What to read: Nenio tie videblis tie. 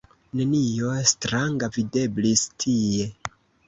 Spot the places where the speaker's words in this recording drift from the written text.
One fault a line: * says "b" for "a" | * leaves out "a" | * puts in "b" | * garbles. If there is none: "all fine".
* says "stranga" for "tie"